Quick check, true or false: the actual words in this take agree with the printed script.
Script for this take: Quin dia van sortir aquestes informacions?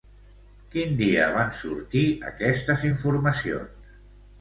true